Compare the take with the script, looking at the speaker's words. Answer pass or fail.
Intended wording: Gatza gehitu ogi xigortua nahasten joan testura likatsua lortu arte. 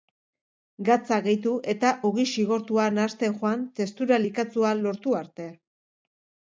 fail